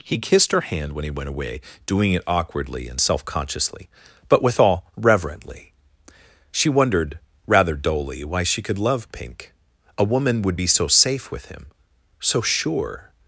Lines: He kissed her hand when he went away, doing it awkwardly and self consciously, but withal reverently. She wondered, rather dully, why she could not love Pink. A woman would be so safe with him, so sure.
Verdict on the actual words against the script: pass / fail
fail